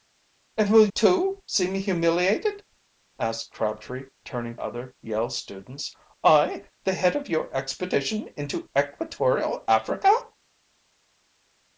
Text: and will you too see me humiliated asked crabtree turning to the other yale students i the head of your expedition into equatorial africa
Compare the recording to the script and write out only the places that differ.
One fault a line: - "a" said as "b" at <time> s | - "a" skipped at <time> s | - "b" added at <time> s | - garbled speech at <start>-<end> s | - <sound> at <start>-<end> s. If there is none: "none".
- "you" skipped at 0.9 s
- "to the" skipped at 4.6 s